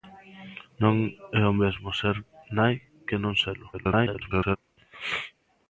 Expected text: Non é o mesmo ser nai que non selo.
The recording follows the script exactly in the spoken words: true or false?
false